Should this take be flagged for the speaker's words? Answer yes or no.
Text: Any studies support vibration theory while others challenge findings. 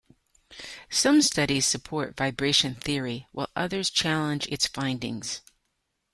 yes